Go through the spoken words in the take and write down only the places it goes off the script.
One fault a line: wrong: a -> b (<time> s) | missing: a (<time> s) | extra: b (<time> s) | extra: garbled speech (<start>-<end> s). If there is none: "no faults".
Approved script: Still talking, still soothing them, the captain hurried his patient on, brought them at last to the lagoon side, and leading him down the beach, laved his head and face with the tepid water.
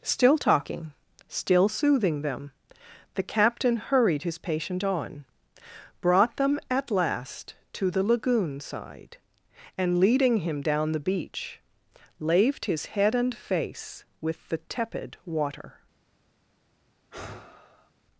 no faults